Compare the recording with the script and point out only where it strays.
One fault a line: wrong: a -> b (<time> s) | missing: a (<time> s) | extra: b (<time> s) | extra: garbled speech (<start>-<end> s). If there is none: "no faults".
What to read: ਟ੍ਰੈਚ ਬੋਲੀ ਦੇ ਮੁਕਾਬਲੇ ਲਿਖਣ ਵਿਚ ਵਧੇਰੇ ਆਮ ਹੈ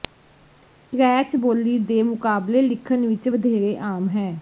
no faults